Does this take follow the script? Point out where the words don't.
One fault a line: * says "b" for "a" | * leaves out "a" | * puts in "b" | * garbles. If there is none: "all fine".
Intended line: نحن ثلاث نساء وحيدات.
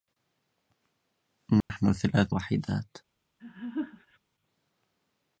* leaves out "نساء"